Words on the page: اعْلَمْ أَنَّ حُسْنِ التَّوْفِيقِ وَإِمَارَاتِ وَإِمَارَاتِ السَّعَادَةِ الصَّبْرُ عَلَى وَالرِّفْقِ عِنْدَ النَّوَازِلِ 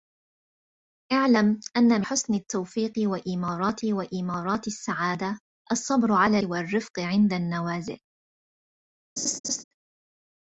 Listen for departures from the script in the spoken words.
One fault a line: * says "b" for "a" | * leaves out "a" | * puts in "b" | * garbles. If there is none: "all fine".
all fine